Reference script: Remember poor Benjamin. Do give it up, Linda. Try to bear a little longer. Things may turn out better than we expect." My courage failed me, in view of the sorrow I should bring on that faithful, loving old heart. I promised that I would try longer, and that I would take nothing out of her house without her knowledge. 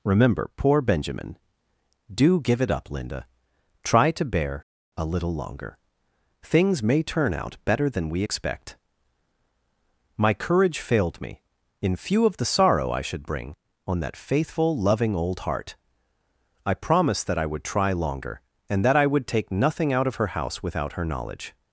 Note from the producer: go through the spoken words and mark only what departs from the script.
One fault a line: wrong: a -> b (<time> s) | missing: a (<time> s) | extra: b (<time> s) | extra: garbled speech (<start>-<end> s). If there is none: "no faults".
wrong: view -> few (12.0 s)